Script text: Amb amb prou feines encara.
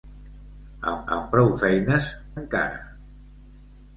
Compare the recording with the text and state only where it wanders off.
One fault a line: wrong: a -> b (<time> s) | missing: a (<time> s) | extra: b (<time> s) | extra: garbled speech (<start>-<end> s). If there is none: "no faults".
no faults